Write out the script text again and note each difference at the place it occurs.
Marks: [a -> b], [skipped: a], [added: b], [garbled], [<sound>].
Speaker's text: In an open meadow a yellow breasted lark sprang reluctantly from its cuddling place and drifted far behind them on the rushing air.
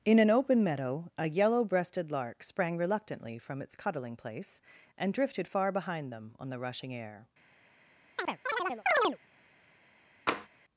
In an open meadow a yellow breasted lark sprang reluctantly from its cuddling place and drifted far behind them on the rushing air. [chirp] [tap]